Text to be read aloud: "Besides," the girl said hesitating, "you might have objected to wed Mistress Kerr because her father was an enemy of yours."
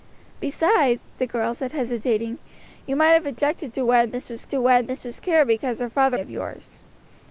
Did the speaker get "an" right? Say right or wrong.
wrong